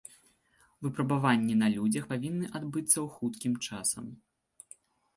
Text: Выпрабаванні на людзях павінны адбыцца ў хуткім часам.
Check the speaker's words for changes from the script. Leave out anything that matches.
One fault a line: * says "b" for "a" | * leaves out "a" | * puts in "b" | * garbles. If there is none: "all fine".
all fine